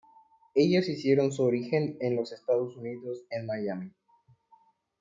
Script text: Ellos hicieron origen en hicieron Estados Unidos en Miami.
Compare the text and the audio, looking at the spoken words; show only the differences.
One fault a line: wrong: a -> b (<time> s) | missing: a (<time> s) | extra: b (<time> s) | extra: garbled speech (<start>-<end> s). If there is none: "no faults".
extra: su (1.3 s)
wrong: hicieron -> los (2.1 s)